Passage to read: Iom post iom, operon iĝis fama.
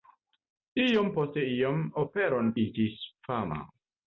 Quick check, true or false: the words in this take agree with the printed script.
true